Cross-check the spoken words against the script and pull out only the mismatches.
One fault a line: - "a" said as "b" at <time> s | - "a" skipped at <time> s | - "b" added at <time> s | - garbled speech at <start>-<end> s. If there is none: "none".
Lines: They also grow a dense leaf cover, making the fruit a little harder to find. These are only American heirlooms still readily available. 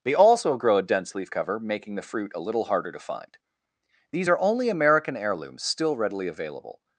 none